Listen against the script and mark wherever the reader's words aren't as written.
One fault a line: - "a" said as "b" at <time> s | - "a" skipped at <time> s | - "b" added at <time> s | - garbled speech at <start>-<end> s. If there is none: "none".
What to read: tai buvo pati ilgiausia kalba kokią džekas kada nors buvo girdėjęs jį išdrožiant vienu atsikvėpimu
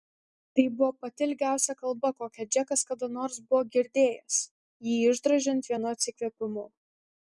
none